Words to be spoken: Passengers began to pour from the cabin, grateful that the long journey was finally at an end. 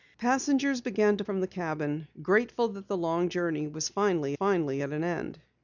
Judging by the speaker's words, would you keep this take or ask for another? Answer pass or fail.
fail